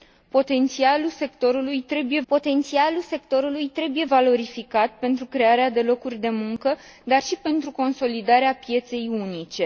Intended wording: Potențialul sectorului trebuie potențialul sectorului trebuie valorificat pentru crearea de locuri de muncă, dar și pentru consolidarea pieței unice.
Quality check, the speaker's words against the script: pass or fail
pass